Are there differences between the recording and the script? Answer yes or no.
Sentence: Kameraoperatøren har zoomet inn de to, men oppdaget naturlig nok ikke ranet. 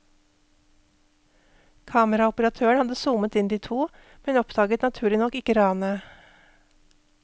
yes